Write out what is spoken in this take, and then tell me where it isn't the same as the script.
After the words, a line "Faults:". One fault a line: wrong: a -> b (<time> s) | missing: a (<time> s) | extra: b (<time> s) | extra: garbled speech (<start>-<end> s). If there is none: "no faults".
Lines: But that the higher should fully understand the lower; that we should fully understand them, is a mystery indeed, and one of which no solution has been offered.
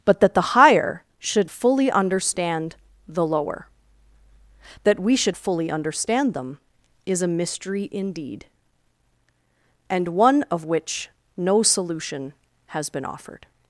But that the higher should fully understand the lower; that we should fully understand them, is a mystery indeed, and one of which no solution has been offered.
Faults:
no faults